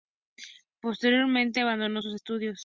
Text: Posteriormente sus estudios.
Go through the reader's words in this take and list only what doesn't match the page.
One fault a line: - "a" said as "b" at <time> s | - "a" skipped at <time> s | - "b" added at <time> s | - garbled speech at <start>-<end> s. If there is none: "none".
- "abandonó" added at 1.6 s